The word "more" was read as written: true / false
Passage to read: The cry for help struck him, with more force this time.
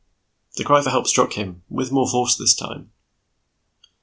true